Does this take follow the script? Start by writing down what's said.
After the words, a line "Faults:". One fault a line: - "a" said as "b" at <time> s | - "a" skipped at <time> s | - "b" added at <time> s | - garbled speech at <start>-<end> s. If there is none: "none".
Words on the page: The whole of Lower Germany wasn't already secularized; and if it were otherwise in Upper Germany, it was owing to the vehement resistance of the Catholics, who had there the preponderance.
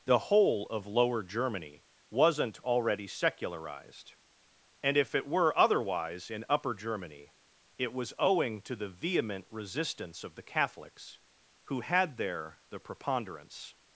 The whole of Lower Germany wasn't already secularized; and if it were otherwise in Upper Germany, it was owing to the vehement resistance of the Catholics, who had there the preponderance.
Faults:
none